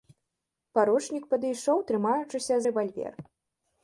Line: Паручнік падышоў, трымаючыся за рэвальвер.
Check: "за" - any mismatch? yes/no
yes